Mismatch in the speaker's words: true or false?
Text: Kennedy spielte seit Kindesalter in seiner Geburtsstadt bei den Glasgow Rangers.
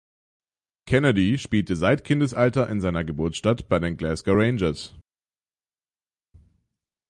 false